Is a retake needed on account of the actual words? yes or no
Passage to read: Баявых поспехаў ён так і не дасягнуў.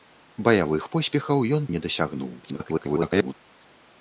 yes